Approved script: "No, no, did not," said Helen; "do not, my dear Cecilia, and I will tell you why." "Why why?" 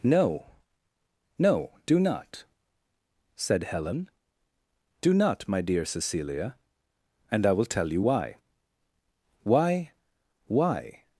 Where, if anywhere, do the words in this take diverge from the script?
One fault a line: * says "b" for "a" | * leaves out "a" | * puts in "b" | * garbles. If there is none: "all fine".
* says "do" for "did"